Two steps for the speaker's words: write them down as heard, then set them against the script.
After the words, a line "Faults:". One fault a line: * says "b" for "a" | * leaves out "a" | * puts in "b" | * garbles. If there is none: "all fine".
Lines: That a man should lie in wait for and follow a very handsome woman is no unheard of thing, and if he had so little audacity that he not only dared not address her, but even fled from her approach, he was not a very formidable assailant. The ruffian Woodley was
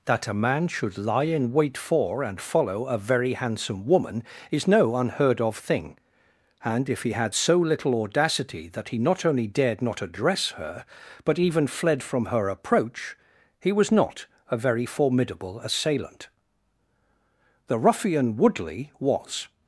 That a man should lie in wait for and follow a very handsome woman is no unheard of thing, and if he had so little audacity that he not only dared not address her, but even fled from her approach, he was not a very formidable assailant. The ruffian Woodley was
Faults:
all fine